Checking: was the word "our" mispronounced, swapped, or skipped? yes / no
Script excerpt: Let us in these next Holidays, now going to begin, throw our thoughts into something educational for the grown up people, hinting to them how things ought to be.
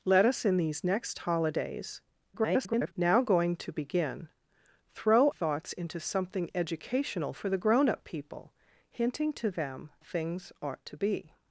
yes